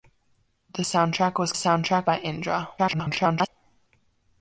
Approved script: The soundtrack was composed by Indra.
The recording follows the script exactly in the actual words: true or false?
false